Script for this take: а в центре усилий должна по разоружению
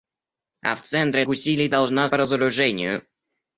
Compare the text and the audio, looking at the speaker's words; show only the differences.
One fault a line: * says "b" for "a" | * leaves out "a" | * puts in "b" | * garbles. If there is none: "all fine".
all fine